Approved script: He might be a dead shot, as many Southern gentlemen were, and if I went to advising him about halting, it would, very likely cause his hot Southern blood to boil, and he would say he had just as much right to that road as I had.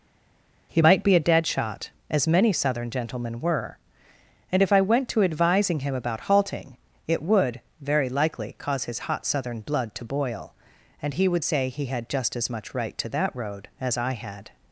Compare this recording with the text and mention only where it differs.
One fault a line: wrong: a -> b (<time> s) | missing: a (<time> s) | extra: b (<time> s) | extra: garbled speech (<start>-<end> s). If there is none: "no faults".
no faults